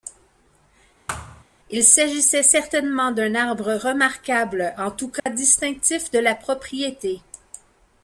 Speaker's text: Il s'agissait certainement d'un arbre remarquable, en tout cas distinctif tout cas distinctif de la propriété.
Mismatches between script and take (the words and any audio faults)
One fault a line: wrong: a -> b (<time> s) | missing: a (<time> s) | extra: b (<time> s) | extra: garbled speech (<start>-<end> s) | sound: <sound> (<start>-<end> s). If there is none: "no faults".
sound: thud (1.1-1.4 s)
sound: dropout (5.2-5.3 s)
missing: tout cas distinctif (6.1 s)